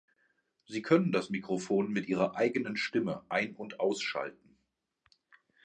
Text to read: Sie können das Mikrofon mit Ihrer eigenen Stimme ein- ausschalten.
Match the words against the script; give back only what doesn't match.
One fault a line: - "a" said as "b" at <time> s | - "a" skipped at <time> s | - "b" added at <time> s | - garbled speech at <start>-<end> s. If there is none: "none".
- "und" added at 3.5 s